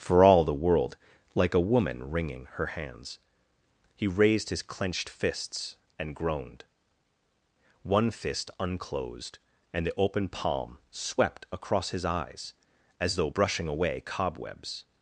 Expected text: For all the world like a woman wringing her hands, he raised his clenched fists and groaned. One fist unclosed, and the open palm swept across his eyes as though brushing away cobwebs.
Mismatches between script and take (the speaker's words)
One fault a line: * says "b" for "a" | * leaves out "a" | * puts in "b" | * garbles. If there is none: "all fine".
all fine